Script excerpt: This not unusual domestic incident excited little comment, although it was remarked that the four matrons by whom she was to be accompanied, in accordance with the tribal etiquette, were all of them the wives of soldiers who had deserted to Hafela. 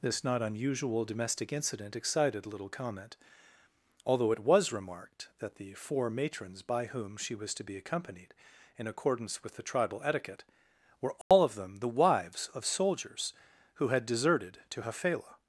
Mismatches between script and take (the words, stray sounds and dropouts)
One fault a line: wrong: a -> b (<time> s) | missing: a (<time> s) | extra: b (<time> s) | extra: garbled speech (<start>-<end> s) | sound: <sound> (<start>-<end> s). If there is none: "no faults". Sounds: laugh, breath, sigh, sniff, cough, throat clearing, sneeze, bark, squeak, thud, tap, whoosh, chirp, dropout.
sound: dropout (11.2-11.3 s)